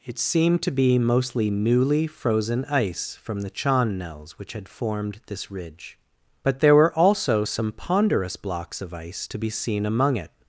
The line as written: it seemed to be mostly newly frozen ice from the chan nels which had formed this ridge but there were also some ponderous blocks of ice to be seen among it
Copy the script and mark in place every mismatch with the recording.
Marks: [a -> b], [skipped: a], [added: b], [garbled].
it seemed to be mostly newly frozen ice from the chan nels which had formed this ridge but there were also some ponderous blocks of ice to be seen among it